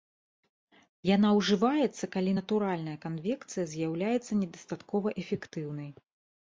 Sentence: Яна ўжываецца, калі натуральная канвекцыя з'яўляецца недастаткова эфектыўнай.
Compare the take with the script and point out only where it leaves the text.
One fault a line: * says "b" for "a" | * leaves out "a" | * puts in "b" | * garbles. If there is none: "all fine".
all fine